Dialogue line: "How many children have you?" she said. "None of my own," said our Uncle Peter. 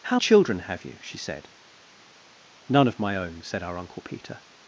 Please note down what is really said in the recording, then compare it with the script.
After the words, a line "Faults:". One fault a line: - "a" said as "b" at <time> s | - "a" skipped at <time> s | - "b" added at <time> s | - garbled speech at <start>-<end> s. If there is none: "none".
"How children have you?" she said. "None of my own," said our Uncle Peter.
Faults:
- "many" skipped at 0.2 s